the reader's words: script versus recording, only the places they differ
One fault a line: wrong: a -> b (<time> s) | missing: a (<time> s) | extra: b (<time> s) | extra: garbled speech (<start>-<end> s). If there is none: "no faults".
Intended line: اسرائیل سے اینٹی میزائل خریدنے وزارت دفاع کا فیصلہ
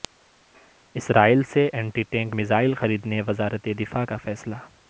extra: ٹینک (2.0 s)